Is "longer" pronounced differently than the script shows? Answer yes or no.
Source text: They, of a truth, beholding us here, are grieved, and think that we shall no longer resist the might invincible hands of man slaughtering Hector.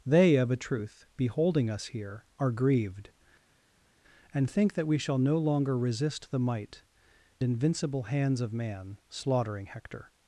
no